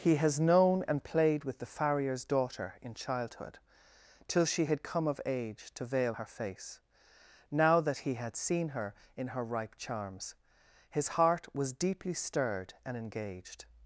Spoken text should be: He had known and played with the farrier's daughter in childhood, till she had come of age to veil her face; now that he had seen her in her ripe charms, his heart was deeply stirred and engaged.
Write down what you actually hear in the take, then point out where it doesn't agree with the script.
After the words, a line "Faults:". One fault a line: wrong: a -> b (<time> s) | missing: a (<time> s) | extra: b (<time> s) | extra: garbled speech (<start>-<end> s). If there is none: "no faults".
He has known and played with the farrier's daughter in childhood, till she had come of age to veil her face; now that he had seen her in her ripe charms, his heart was deeply stirred and engaged.
Faults:
wrong: had -> has (0.1 s)